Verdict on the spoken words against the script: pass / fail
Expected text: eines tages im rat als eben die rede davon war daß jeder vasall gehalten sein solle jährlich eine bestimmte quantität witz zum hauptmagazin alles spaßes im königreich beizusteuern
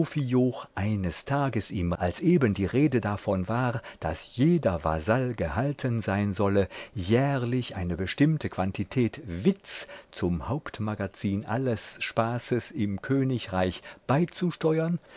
fail